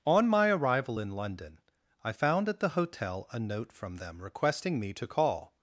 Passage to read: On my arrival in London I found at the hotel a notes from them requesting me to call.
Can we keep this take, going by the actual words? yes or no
no